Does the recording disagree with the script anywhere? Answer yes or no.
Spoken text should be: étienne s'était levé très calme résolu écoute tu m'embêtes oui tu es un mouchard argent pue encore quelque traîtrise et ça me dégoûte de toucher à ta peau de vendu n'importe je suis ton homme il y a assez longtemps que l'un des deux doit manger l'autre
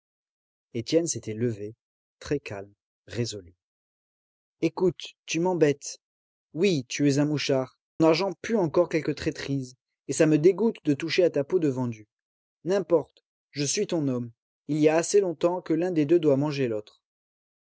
no